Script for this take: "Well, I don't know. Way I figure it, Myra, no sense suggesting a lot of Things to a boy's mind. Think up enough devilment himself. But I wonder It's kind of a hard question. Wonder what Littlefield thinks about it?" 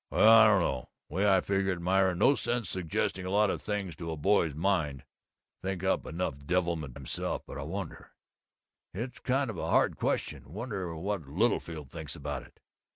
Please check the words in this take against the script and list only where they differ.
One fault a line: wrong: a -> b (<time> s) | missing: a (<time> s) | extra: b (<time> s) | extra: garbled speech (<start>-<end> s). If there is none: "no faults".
no faults